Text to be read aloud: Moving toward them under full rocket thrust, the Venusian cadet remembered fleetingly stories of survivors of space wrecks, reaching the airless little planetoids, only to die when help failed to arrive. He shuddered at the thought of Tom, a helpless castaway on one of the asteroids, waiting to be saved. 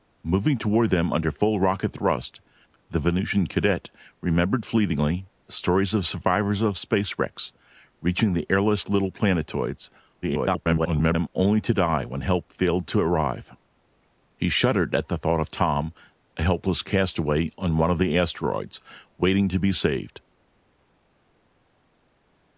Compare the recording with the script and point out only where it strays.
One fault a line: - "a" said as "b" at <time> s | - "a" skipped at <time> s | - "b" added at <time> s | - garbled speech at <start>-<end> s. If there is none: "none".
- garbled speech at 10.2-11.3 s